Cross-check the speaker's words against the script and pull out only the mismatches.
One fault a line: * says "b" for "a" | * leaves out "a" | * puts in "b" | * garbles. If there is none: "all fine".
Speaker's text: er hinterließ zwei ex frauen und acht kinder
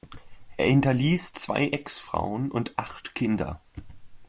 all fine